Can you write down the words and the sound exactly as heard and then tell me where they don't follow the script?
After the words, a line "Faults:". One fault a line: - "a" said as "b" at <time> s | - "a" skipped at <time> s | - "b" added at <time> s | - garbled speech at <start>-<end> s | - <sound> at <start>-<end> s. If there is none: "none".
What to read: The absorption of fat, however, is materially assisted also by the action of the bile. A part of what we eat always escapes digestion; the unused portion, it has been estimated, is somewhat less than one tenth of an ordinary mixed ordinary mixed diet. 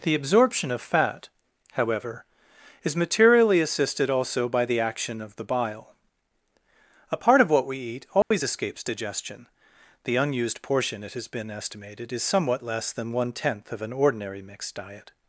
The absorption of fat, however, is materially assisted also by the action of the bile. A part of what we eat always escapes digestion; the unused portion, it has been estimated, is somewhat less than one tenth of an ordinary mixed diet.
Faults:
- dropout at 8.2-8.3 s
- "ordinary mixed" skipped at 14.7 s